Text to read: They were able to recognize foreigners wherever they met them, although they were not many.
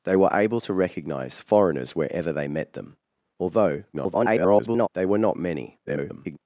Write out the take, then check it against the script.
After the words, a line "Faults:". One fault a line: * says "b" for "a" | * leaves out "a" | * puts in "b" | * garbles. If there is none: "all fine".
They were able to recognize foreigners wherever they met them, although [garbled] they were not many. [garbled]
Faults:
* garbles
* garbles